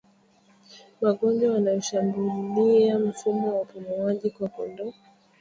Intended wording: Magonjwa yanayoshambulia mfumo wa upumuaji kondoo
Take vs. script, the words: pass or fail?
fail